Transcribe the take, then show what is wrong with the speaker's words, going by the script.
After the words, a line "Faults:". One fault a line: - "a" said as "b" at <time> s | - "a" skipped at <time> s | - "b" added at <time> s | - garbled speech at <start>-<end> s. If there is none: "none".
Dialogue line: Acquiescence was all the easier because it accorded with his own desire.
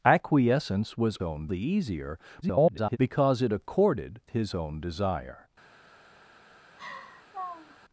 Acquiescence was own the easier [garbled] because it accorded his own desire.
Faults:
- "all" said as "own" at 1.2 s
- garbled speech at 2.4-3.0 s
- "with" skipped at 4.2 s